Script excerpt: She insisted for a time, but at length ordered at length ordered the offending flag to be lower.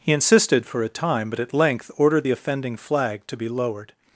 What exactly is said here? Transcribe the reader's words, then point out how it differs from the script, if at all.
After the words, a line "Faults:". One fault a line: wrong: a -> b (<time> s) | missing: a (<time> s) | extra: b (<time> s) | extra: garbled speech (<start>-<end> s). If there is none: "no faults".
He insisted for a time, but at length ordered the offending flag to be lowered.
Faults:
wrong: She -> He (0.0 s)
missing: at length ordered (2.2 s)
wrong: lower -> lowered (3.5 s)